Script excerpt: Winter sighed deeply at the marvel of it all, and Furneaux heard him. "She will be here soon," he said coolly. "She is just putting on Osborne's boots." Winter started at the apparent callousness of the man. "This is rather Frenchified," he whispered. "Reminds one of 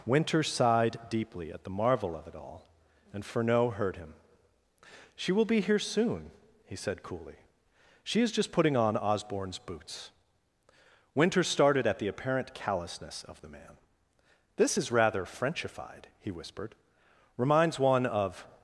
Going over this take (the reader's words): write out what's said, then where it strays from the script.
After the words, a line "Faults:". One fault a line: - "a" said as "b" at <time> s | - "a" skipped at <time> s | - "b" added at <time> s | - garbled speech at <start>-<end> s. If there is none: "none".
Winter sighed deeply at the marvel of it all, and Furneaux heard him. "She will be here soon," he said coolly. "She is just putting on Osborne's boots." Winter started at the apparent callousness of the man. "This is rather Frenchified," he whispered. "Reminds one of
Faults:
none